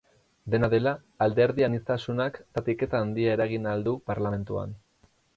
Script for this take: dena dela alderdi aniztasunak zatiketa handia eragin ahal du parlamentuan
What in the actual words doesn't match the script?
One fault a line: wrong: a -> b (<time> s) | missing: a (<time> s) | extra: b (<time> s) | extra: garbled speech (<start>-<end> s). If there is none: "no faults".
no faults